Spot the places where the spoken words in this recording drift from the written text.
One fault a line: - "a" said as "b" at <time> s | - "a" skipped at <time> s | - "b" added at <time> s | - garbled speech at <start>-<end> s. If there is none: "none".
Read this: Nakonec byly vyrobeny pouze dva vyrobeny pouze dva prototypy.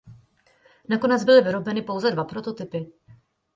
- "vyrobeny pouze dva" skipped at 2.2 s